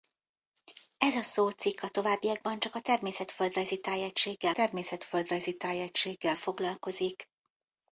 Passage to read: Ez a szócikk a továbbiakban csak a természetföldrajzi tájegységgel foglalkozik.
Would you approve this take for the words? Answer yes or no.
no